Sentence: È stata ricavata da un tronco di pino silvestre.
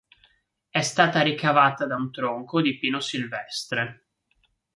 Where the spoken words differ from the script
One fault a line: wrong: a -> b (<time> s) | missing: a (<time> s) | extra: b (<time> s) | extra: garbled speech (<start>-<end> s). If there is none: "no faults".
no faults